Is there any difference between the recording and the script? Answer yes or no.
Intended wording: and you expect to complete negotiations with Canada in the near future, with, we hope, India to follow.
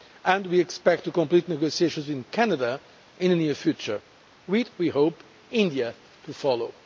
yes